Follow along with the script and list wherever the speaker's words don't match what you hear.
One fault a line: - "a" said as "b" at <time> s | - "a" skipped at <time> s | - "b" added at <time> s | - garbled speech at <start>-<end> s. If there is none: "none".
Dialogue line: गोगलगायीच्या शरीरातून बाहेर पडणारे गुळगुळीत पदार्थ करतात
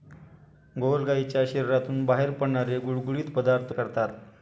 none